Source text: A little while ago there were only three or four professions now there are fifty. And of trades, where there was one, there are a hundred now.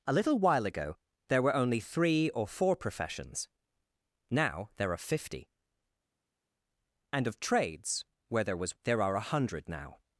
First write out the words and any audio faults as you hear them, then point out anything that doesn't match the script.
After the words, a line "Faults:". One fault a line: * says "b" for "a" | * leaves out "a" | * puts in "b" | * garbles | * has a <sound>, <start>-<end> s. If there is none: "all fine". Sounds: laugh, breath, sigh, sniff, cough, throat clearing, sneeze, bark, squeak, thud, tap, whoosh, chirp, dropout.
A little while ago there were only three or four professions now there are fifty. And of trades, where there was there are a hundred now.
Faults:
* leaves out "one"